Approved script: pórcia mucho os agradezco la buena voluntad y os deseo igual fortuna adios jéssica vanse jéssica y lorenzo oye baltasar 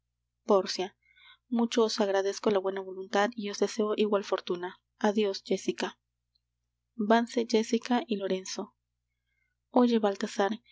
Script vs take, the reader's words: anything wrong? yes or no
no